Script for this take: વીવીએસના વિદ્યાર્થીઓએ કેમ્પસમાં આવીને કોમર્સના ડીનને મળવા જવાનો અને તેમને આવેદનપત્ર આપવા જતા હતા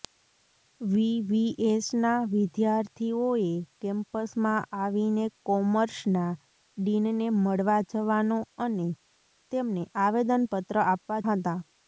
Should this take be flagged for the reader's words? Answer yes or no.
yes